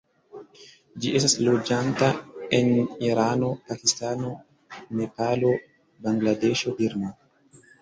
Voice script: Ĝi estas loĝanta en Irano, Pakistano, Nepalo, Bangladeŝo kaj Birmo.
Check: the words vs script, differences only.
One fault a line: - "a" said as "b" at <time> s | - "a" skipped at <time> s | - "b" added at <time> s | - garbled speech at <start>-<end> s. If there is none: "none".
- "kaj" skipped at 6.8 s